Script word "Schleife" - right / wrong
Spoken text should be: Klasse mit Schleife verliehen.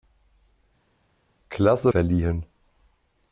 wrong